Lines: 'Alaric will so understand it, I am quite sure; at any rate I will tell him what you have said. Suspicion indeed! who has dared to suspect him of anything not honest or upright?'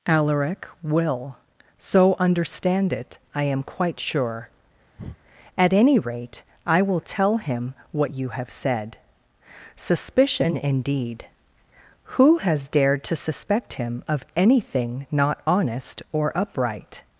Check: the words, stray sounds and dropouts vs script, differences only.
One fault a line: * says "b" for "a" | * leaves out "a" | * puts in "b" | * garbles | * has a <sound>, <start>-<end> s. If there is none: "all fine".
* has a breath, 5.0-5.2 s